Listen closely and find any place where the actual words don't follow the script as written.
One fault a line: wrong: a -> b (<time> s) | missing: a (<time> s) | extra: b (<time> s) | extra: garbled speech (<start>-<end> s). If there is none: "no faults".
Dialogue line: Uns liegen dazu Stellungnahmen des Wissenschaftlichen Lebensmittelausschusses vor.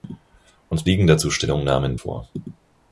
missing: des Wissenschaftlichen Lebensmittelausschusses (2.0 s)